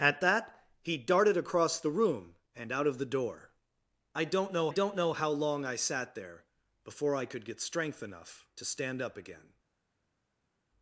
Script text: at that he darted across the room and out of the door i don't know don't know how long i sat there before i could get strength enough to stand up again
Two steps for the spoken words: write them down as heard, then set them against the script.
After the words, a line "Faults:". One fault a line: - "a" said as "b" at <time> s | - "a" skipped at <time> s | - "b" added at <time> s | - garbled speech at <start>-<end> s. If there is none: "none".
at that he darted across the room and out of the door i don't know don't know how long i sat there before i could get strength enough to stand up again
Faults:
none